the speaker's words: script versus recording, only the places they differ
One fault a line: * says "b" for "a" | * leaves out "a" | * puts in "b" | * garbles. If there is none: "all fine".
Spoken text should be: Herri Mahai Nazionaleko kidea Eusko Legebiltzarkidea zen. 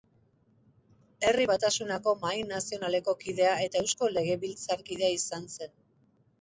* puts in "Batasunako"
* puts in "eta"
* puts in "izan"